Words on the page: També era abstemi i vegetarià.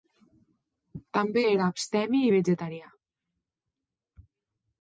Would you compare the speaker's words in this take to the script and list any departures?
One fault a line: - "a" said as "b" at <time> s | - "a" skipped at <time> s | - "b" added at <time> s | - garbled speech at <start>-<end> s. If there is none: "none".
none